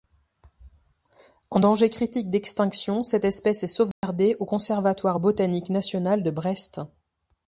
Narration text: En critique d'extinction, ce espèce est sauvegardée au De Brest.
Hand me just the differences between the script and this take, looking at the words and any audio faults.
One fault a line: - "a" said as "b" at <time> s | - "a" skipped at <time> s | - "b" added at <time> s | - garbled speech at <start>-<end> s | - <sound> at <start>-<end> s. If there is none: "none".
- "danger" added at 1.6 s
- "ce" said as "cette" at 3.0 s
- dropout at 3.9-4.0 s
- "Conservatoire botanique national" added at 4.4 s